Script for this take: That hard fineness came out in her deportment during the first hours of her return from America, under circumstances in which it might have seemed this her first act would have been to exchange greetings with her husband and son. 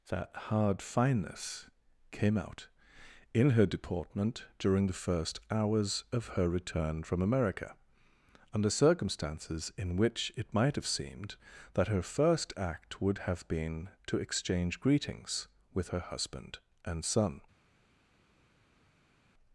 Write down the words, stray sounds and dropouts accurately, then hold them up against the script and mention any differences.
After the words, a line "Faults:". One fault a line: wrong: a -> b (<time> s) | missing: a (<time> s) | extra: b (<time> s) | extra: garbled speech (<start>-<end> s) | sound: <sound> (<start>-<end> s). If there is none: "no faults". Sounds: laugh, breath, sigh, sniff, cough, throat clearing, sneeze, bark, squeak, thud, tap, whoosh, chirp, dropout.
That hard fineness came out in her deportment during the first hours of her return from America, under circumstances in which it might have seemed that her first act would have been to exchange greetings with her husband and son.
Faults:
wrong: this -> that (11.8 s)